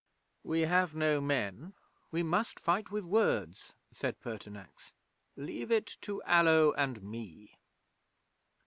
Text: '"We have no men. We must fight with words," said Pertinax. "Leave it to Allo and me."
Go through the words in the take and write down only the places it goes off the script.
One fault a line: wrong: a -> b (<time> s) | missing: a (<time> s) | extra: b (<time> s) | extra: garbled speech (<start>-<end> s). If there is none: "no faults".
no faults